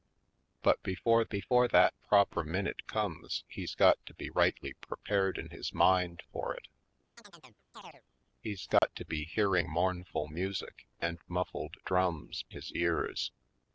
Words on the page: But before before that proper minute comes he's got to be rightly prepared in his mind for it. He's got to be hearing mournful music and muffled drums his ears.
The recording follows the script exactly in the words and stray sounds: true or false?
false